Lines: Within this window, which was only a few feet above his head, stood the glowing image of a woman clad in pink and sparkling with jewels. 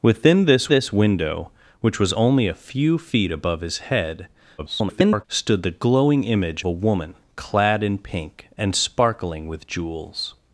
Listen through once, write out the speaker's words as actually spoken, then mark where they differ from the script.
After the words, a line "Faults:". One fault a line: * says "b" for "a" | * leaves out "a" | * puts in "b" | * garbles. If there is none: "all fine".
Within this this window, which was only a few feet above his head, [garbled] stood the glowing image a woman clad in pink and sparkling with jewels.
Faults:
* puts in "this"
* garbles
* leaves out "of"